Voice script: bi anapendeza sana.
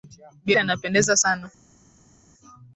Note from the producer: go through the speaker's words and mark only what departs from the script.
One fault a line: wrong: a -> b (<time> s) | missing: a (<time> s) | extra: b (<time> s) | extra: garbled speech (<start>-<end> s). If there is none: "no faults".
no faults